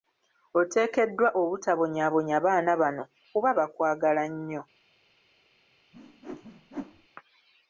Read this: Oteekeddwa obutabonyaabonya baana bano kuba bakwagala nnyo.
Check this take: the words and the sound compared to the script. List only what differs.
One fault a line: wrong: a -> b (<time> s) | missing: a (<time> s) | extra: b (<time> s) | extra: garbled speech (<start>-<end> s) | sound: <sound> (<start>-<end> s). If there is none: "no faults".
sound: whoosh (5.9-7.1 s)